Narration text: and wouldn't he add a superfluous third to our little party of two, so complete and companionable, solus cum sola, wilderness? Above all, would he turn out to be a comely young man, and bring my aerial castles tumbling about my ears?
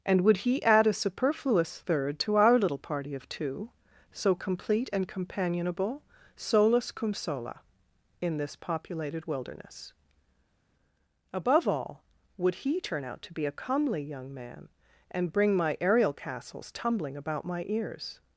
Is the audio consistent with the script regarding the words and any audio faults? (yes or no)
no